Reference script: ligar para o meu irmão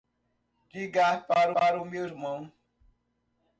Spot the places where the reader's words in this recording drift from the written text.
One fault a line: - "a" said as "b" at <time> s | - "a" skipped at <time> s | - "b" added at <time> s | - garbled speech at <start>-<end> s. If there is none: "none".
- "para" added at 1.5 s